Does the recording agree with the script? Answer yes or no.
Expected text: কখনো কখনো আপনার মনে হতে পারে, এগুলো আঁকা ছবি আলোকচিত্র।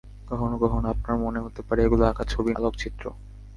yes